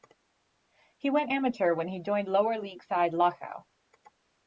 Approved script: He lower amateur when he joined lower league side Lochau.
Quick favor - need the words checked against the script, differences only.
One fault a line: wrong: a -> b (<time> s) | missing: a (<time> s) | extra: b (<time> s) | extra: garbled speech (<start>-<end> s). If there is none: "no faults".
wrong: lower -> went (1.1 s)